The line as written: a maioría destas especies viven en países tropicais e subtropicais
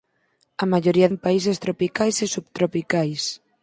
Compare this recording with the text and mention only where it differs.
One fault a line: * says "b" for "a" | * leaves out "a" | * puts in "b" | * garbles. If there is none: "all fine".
* leaves out "destas especies viven"